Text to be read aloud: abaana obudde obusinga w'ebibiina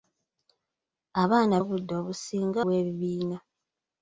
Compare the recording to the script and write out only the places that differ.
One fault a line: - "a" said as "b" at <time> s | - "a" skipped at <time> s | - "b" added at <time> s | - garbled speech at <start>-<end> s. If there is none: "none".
none